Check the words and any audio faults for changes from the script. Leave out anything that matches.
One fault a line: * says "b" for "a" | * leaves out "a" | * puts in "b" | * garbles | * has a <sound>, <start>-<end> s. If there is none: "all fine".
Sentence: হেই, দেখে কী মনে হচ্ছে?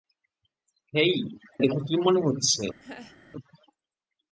* has a laugh, 2.8-3.2 s